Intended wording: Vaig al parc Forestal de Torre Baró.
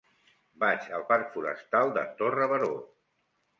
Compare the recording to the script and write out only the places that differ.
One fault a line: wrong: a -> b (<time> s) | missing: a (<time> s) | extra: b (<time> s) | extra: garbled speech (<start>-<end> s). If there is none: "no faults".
no faults